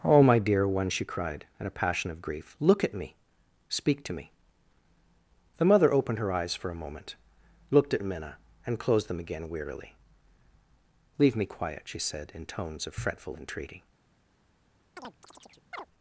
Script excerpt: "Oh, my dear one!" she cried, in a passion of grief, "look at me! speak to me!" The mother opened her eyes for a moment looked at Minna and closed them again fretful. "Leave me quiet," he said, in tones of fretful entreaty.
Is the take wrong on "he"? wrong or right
wrong